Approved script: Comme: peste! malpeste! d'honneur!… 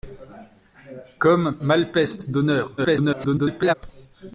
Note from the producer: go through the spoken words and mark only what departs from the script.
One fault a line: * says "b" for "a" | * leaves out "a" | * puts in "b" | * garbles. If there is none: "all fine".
* leaves out "peste"
* garbles